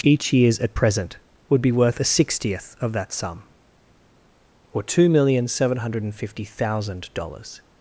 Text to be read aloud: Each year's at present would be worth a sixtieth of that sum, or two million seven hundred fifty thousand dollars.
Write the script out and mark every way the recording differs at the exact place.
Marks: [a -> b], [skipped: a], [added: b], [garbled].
Each year's at present would be worth a sixtieth of that sum, or two million seven hundred fifty thousand dollars.